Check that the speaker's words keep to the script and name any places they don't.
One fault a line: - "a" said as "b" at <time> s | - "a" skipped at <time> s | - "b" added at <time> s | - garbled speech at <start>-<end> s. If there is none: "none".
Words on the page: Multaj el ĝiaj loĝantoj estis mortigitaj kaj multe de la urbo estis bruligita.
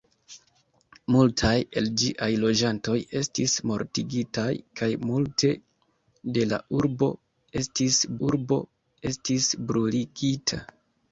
- "urbo estis" added at 8.3 s